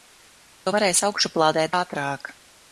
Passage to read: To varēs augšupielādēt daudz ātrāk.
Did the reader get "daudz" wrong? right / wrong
wrong